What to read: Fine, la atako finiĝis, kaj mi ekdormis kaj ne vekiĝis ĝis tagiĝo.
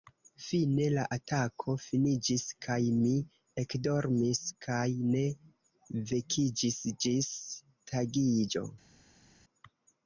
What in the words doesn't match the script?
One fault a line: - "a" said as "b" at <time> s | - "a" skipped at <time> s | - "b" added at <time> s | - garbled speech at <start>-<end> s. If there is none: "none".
none